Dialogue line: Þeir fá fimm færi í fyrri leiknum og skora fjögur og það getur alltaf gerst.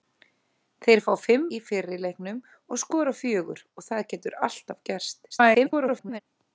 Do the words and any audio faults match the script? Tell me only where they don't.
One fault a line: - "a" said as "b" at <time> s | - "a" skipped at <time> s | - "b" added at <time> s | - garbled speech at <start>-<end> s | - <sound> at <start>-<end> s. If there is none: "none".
- "færi" skipped at 1.4 s
- garbled speech at 5.3-6.2 s